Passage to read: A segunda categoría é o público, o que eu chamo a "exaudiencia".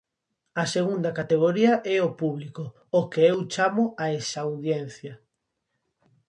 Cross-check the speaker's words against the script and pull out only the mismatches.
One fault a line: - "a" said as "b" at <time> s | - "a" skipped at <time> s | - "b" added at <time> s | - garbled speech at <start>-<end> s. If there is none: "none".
none